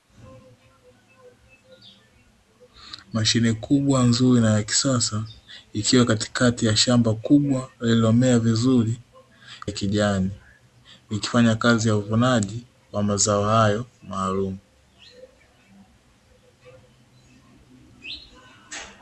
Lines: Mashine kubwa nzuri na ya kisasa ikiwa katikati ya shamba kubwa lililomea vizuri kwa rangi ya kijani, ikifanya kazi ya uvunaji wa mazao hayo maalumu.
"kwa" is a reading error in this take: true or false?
true